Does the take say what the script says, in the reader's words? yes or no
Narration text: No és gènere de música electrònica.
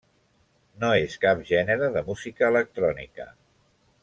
no